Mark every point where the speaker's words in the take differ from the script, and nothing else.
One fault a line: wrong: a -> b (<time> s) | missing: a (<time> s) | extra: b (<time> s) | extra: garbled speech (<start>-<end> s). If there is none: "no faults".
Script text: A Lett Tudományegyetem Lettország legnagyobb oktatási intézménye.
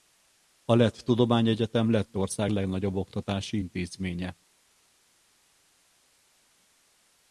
no faults